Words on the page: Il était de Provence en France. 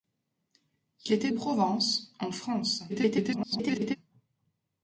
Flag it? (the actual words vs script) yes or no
yes